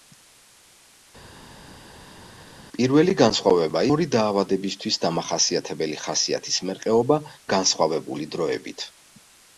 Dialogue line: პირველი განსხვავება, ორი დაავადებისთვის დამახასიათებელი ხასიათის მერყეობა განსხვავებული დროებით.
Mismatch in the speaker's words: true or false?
false